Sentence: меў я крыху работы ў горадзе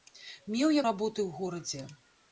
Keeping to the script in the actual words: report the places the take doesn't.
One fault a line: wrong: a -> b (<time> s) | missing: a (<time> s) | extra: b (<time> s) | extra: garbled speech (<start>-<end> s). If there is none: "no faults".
missing: крыху (0.8 s)